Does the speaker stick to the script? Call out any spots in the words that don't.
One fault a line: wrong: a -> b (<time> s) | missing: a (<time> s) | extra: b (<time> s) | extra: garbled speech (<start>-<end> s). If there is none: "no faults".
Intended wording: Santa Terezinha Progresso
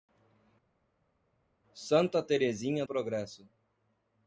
no faults